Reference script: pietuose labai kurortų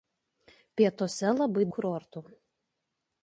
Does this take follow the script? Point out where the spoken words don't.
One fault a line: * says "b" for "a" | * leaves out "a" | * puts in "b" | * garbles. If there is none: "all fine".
all fine